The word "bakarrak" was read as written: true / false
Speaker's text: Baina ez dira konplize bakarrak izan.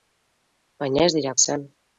false